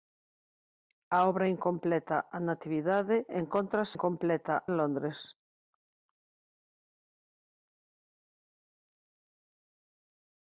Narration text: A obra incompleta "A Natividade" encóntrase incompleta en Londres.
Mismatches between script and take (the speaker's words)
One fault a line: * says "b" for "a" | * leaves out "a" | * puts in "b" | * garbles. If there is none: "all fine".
all fine